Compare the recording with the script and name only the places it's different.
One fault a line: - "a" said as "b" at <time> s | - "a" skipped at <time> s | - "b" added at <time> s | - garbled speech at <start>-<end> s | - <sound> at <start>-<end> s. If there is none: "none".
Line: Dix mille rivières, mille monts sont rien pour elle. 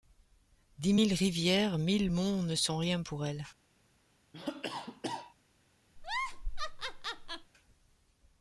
- "ne" added at 2.4 s
- cough at 4.3-5.3 s
- laugh at 6.0-7.5 s